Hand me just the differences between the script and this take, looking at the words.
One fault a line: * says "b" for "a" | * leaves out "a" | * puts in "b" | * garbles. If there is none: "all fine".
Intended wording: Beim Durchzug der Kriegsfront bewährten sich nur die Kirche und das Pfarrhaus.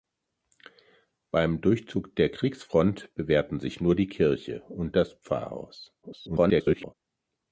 * garbles